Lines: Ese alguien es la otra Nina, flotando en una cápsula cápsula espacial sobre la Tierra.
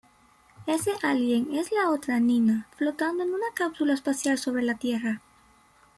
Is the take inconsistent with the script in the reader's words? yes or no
yes